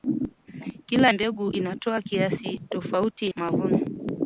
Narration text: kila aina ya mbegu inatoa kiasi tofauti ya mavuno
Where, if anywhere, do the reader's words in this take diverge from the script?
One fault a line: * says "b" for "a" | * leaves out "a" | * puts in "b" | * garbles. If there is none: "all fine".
* leaves out "aina ya"
* leaves out "ya"